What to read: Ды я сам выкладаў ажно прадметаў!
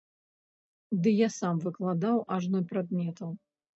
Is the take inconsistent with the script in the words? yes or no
no